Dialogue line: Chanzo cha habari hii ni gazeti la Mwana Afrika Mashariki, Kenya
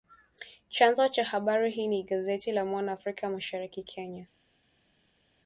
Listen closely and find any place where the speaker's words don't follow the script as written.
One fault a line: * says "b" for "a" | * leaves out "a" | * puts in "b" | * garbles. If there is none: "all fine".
all fine